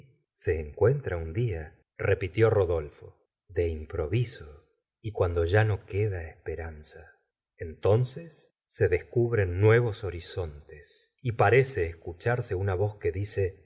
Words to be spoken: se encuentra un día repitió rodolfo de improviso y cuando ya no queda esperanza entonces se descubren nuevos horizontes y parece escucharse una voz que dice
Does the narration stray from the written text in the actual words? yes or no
no